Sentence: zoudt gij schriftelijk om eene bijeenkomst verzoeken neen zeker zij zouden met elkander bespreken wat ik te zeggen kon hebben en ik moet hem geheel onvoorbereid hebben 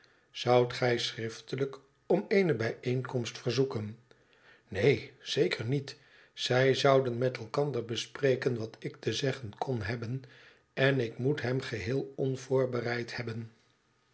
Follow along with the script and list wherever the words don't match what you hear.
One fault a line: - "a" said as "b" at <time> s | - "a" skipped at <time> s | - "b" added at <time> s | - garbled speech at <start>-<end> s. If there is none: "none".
- "niet" added at 5.7 s